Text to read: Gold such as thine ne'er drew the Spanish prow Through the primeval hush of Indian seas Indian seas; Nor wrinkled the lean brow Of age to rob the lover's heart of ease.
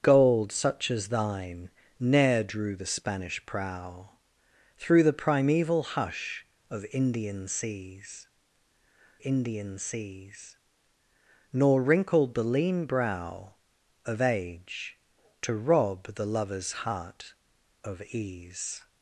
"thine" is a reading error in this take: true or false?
false